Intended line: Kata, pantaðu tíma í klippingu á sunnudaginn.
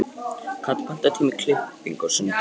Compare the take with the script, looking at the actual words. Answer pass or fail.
pass